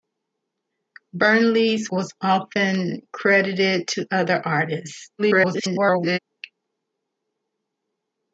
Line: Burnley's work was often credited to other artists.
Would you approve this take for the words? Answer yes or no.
no